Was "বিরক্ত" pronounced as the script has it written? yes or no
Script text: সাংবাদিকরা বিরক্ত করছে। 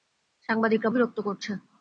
yes